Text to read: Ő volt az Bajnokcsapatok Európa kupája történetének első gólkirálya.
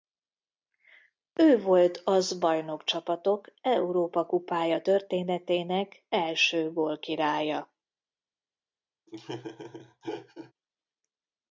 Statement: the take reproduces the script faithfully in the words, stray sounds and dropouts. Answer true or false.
false